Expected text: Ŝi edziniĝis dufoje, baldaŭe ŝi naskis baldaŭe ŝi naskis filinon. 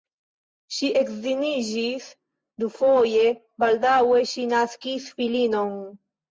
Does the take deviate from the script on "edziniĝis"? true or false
false